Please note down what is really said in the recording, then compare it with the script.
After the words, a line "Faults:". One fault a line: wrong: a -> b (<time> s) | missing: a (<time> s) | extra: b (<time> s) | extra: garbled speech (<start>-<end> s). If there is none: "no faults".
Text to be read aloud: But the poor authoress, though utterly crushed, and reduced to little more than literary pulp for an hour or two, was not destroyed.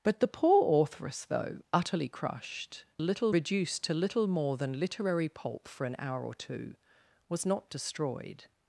But the poor authoress, though utterly crushed, little reduced to little more than literary pulp for an hour or two, was not destroyed.
Faults:
wrong: and -> little (3.0 s)